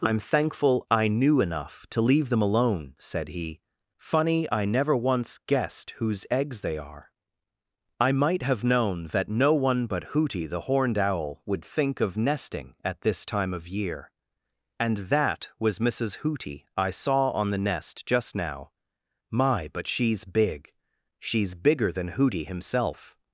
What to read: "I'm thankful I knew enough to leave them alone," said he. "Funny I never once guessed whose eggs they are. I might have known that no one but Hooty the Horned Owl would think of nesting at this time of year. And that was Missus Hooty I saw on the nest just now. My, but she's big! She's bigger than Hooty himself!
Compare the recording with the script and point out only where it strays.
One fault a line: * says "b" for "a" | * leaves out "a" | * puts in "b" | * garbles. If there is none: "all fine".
all fine